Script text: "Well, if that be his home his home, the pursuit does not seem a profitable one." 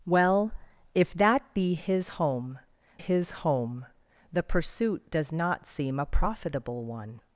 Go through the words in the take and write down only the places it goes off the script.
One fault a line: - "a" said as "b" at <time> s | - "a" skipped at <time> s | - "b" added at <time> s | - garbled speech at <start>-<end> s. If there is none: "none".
none